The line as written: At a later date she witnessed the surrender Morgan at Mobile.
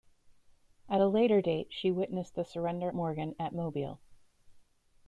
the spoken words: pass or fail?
pass